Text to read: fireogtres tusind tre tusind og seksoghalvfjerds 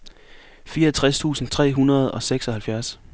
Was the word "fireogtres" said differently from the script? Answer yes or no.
no